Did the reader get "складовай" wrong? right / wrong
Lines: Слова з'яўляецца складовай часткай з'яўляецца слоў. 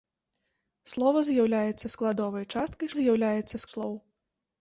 right